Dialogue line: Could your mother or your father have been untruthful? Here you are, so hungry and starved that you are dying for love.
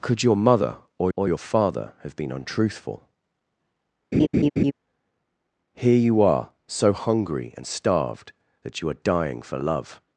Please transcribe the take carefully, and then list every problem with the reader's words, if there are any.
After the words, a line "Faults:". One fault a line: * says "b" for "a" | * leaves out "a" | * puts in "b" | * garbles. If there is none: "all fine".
Could your mother or or your father have been untruthful? Here you are, so hungry and starved that you are dying for love.
Faults:
* puts in "or"